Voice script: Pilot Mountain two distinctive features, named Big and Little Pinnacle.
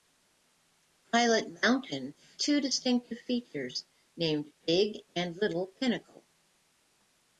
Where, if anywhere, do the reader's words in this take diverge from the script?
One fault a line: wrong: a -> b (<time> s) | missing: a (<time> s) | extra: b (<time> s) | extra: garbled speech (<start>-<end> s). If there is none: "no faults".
no faults